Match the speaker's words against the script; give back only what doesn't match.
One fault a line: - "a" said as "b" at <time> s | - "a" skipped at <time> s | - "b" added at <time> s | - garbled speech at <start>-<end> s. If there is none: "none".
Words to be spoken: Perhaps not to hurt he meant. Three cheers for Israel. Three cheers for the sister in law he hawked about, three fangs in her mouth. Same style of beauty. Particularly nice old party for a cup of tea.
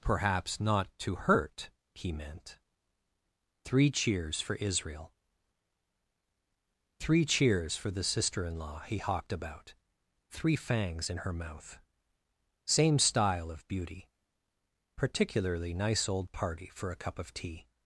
none